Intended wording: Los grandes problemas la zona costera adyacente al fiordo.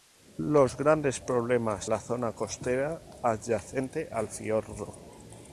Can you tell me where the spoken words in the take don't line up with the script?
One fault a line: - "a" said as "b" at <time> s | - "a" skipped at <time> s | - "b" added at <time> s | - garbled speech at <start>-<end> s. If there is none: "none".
none